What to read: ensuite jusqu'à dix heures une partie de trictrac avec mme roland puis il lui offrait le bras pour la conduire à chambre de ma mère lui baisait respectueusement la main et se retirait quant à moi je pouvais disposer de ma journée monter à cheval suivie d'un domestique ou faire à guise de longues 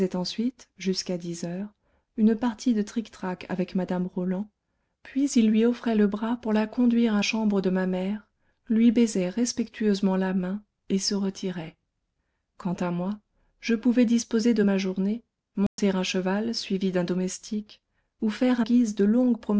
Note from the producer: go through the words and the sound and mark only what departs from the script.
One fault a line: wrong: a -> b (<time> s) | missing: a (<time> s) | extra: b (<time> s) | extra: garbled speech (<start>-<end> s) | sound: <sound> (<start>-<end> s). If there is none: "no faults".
sound: dropout (15.7-15.8 s)